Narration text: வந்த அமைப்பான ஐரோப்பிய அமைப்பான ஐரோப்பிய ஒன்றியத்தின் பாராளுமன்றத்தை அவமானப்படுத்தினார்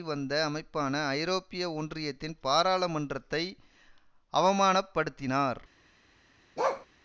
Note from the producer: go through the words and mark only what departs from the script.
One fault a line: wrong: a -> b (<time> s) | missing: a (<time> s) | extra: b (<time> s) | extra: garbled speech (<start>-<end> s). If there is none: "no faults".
missing: அமைப்பான ஐரோப்பிய (1.6 s)